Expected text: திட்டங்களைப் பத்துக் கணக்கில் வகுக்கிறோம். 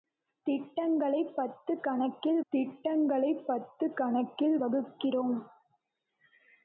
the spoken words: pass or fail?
fail